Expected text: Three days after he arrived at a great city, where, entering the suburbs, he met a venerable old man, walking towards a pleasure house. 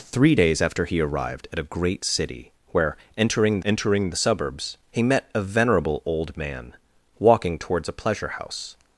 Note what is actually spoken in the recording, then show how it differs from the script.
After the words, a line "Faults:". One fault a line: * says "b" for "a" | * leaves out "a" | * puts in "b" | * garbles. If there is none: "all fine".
Three days after he arrived at a great city, where, entering entering the suburbs, he met a venerable old man, walking towards a pleasure house.
Faults:
* puts in "entering"